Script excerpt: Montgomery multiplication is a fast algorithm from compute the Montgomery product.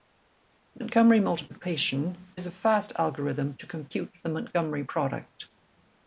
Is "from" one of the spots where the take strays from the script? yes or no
yes